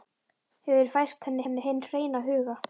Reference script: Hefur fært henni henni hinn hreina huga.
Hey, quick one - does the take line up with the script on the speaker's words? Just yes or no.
yes